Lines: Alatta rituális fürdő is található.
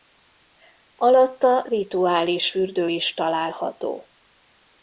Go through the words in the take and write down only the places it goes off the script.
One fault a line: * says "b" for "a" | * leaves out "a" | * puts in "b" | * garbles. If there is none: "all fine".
all fine